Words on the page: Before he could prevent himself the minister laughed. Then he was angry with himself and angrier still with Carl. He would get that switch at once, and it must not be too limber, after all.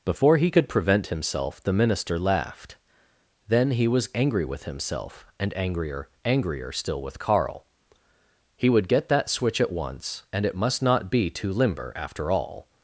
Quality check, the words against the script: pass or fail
fail